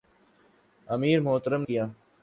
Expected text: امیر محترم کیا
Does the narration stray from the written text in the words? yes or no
no